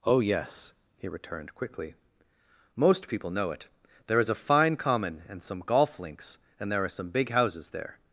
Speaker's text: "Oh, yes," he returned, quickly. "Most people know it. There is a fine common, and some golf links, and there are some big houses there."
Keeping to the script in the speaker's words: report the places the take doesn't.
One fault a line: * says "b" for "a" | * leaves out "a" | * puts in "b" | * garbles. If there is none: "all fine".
all fine